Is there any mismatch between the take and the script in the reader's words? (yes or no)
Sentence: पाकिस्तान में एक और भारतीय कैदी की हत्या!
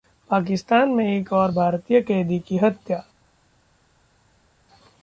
no